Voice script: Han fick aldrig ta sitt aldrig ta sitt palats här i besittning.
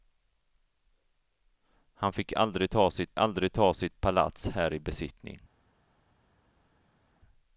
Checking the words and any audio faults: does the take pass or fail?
pass